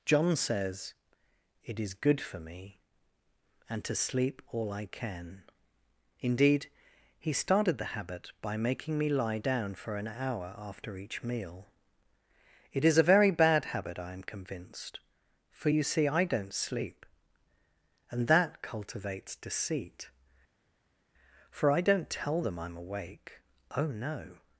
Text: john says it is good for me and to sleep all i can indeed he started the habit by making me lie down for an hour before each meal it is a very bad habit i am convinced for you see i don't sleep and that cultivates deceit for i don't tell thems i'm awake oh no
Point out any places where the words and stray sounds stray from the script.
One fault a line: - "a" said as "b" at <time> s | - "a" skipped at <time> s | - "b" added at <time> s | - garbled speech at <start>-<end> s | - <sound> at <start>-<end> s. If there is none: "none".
- "before" said as "after" at 10.6 s
- "thems" said as "them" at 22.4 s